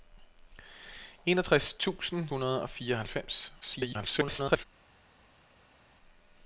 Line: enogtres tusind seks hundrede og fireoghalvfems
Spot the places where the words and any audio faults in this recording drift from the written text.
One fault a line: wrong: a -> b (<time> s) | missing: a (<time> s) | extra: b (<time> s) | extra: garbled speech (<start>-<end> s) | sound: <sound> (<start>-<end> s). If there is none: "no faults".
missing: seks (2.3 s)
extra: garbled speech (3.6-4.6 s)